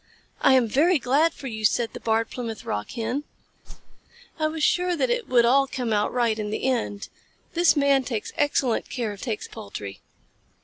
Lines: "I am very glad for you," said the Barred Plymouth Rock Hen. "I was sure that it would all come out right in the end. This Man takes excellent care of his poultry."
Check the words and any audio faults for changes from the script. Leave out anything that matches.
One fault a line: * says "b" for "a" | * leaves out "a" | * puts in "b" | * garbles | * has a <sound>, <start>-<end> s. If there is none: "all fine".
* has a whoosh, 3.6-4.0 s
* says "takes" for "his"